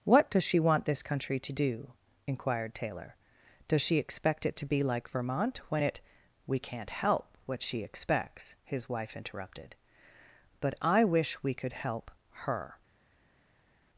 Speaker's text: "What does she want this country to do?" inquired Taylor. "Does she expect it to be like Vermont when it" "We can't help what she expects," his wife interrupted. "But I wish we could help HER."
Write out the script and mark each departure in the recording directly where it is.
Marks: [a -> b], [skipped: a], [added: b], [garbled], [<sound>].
"What does she want this country to do?" inquired Taylor. "Does she expect it to be like Vermont when it" "We can't help what she expects," his wife interrupted. "But I wish we could help HER."